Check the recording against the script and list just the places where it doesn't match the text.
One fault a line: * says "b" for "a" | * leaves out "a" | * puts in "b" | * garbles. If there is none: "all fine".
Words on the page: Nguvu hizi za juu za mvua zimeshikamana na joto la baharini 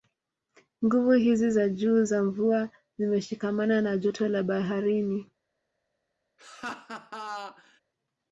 all fine